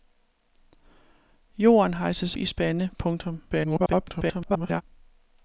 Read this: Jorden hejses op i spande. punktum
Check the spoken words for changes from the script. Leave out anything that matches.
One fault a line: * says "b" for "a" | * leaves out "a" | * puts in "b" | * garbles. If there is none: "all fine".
* leaves out "op"
* garbles